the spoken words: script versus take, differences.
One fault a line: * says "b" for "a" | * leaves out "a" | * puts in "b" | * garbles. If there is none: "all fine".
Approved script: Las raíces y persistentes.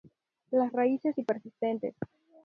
all fine